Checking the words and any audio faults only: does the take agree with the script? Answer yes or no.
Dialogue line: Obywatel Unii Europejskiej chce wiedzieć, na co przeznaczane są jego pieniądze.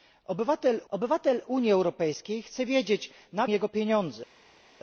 no